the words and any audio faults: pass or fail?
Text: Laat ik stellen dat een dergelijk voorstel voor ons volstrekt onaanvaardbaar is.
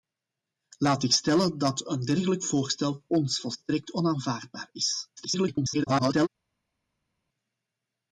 fail